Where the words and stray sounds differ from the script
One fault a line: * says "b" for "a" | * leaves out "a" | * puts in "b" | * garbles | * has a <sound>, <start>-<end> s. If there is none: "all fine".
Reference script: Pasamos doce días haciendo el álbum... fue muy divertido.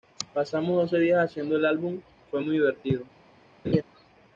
* has a laugh, 3.6-3.8 s